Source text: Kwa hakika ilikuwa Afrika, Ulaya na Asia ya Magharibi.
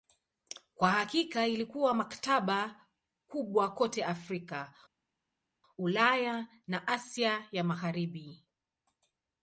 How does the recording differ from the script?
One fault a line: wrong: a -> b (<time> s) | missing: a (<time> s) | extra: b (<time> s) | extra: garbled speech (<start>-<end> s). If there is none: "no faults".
extra: maktaba kubwa kote (1.9 s)